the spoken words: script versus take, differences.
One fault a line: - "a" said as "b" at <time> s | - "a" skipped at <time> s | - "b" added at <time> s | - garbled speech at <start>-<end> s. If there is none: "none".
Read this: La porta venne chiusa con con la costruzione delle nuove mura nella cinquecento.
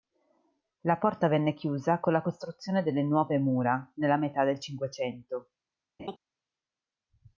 - "con" skipped at 2.1 s
- "metà del" added at 4.2 s